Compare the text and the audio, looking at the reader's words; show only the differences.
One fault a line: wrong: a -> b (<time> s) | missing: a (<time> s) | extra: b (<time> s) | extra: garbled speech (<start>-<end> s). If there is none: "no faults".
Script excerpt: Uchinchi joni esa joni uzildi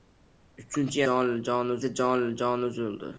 no faults